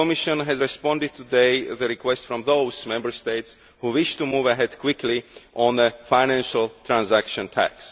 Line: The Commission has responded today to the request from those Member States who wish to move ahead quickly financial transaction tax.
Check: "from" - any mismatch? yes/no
no